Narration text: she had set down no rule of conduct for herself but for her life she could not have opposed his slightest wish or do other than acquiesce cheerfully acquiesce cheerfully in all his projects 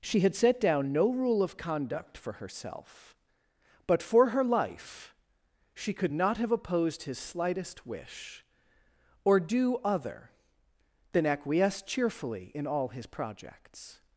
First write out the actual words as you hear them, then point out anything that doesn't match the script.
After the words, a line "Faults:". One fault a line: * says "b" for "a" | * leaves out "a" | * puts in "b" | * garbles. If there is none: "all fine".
she had set down no rule of conduct for herself but for her life she could not have opposed his slightest wish or do other than acquiesce cheerfully in all his projects
Faults:
* leaves out "acquiesce cheerfully"